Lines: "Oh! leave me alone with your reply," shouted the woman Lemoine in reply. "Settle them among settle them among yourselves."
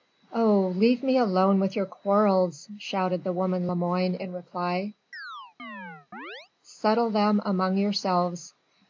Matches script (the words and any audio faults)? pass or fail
fail